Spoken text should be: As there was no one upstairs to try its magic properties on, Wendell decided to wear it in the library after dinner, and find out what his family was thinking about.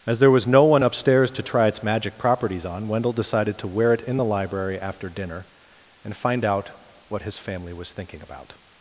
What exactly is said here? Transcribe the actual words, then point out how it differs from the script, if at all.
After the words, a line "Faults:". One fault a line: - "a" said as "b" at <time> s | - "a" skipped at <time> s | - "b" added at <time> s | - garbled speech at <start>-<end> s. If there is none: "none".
As there was no one upstairs to try its magic properties on, Wendell decided to wear it in the library after dinner, and find out what his family was thinking about.
Faults:
none